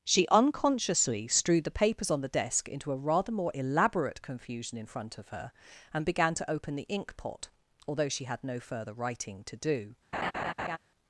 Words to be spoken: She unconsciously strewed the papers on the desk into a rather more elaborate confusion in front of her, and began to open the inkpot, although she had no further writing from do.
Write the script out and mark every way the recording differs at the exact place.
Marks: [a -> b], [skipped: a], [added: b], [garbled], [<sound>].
She unconsciously strewed the papers on the desk into a rather more elaborate confusion in front of her, and began to open the inkpot, although she had no further writing [from -> to] do. [laugh]